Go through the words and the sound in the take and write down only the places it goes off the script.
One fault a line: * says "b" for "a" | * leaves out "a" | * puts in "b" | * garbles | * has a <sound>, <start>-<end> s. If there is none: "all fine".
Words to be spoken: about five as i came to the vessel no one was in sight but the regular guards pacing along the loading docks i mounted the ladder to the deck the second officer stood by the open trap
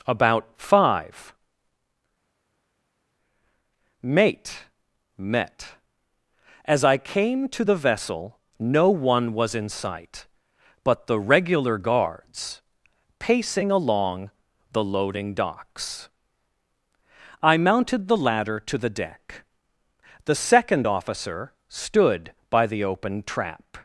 * puts in "mate met"